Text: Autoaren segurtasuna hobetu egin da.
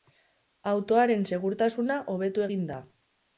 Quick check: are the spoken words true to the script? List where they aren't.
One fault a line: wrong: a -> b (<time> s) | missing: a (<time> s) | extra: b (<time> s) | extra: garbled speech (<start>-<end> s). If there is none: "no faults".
no faults